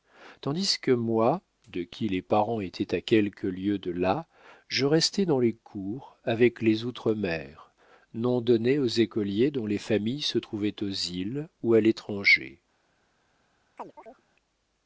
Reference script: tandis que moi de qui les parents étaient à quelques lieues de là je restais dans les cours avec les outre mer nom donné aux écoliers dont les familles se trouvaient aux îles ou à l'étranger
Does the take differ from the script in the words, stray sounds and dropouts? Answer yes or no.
yes